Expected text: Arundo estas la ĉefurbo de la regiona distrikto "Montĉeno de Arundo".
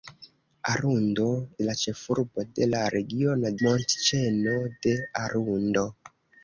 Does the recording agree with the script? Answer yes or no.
no